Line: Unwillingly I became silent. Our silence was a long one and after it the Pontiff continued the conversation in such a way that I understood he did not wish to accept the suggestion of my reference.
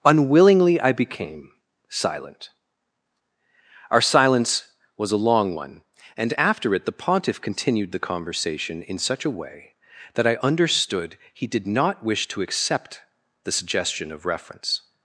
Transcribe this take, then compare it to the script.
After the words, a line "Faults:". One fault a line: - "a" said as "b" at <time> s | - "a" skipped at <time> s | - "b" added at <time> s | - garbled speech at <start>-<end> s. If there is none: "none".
Unwillingly I became silent. Our silence was a long one and after it the Pontiff continued the conversation in such a way that I understood he did not wish to accept the suggestion of reference.
Faults:
- "my" skipped at 14.2 s